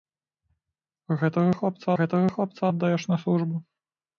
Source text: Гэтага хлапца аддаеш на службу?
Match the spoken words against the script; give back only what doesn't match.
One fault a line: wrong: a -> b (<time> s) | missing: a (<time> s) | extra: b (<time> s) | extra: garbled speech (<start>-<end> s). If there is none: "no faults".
extra: гэтага хлапца (2.0 s)